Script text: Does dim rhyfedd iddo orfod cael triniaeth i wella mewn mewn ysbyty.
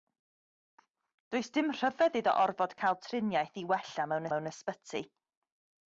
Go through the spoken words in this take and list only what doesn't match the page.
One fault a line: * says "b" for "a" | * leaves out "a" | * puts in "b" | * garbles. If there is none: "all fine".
all fine